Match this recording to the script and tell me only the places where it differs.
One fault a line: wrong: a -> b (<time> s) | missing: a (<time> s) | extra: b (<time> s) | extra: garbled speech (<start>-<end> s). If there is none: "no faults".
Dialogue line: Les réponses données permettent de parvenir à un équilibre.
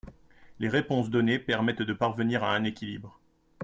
no faults